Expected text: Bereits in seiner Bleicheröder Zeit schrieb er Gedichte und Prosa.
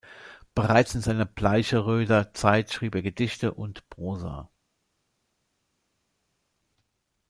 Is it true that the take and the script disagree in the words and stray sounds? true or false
false